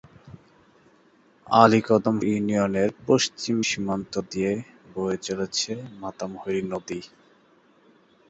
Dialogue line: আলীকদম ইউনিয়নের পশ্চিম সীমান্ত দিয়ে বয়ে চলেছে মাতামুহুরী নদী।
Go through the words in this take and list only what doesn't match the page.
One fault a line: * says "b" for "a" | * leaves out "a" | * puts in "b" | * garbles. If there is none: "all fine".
all fine